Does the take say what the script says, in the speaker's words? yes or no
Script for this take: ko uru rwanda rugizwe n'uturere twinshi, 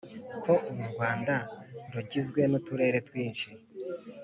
yes